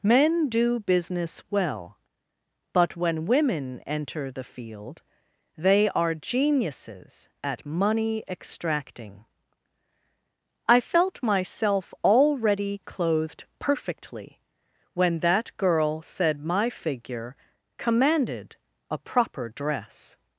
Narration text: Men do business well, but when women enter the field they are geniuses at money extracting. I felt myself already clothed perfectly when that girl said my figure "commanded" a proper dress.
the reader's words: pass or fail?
pass